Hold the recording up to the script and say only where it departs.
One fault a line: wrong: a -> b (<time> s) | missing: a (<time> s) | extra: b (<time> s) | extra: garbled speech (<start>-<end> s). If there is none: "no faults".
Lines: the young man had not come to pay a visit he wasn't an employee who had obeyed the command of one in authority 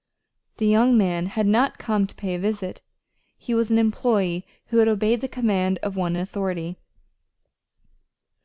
wrong: wasn't -> was (3.5 s)